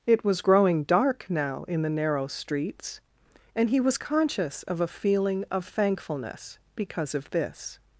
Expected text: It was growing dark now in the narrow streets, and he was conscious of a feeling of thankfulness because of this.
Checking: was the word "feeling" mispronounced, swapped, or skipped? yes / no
no